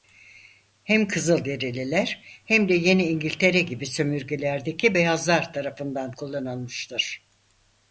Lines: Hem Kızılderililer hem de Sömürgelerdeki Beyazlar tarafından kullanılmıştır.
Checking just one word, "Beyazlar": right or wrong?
right